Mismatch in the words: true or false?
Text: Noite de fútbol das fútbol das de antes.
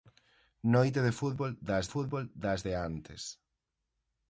false